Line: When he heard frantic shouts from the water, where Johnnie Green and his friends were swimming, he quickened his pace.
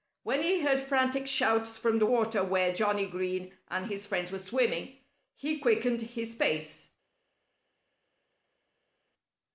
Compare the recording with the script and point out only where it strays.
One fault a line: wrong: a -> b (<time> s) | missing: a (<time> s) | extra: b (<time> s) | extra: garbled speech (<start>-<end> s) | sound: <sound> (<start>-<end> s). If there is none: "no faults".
no faults